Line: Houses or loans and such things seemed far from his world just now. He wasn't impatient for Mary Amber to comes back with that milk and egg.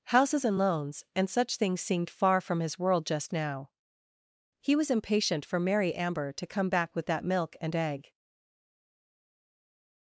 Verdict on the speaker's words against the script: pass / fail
fail